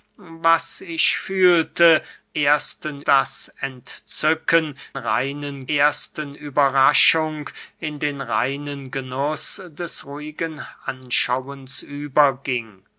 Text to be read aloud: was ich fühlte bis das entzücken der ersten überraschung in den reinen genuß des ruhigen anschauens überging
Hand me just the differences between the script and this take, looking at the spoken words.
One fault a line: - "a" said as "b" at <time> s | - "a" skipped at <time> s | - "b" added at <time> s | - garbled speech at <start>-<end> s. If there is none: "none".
- "bis" said as "ersten" at 2.4 s
- "der" said as "reinen" at 5.0 s